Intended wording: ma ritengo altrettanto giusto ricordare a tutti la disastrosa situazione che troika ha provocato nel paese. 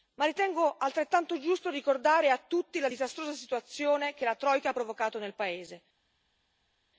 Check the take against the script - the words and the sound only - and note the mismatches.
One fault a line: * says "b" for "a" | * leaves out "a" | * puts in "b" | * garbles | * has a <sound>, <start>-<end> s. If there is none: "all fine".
* puts in "la"